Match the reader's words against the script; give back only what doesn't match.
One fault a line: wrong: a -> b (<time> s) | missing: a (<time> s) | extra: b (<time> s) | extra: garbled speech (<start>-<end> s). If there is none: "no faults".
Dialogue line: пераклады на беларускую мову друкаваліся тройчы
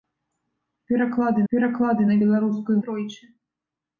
extra: пераклады (1.5 s)
missing: мову друкаваліся (2.8 s)